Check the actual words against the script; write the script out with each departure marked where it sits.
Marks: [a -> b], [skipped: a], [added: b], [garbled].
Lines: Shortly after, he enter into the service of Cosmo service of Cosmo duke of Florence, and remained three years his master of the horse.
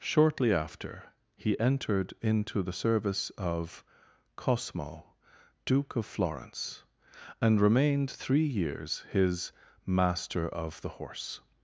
Shortly after, he [enter -> entered] into the service of Cosmo [skipped: service of Cosmo] duke of Florence, and remained three years his master of the horse.